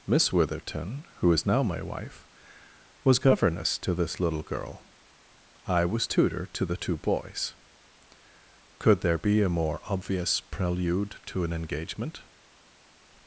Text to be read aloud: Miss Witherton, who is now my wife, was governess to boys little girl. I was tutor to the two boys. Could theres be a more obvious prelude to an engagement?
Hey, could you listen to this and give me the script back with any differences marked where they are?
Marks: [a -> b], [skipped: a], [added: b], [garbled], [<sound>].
Miss Witherton, who is now my wife, was governess to [boys -> this] little girl. I was tutor to the two boys. Could [theres -> there] be a more obvious prelude to an engagement?